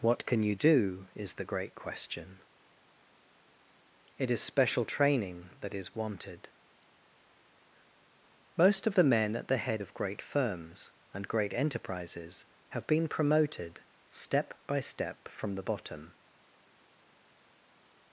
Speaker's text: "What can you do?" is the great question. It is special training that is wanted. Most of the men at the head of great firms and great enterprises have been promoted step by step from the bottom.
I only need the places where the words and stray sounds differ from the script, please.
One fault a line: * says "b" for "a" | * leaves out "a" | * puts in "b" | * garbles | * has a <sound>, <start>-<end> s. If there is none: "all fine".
all fine